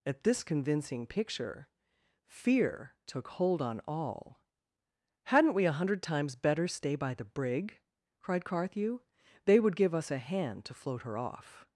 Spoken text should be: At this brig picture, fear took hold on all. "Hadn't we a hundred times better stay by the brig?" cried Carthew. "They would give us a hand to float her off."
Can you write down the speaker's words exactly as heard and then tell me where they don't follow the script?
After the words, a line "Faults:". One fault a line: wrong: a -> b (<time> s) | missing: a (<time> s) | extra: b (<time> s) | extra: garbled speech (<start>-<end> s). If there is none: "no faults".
At this convincing picture, fear took hold on all. "Hadn't we a hundred times better stay by the brig?" cried Carthew. "They would give us a hand to float her off."
Faults:
wrong: brig -> convincing (0.4 s)